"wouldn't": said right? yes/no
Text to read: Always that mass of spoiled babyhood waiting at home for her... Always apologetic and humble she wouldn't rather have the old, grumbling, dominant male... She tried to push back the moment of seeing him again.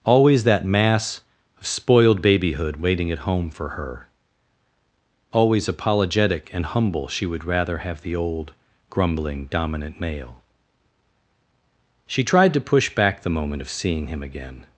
no